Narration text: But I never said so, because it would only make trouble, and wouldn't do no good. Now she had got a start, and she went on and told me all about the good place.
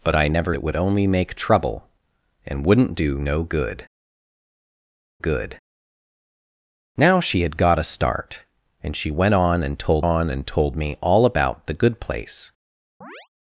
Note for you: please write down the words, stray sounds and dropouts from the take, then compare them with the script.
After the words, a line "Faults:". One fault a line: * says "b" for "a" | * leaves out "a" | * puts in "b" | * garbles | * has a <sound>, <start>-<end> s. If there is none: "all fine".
But I never it would only make trouble, and wouldn't do no good good. Now she had got a start, and she went on and told on and told me all about the good place.
Faults:
* leaves out "said so because"
* puts in "good"
* puts in "on and told"
* has a chirp, 13.0-13.3 s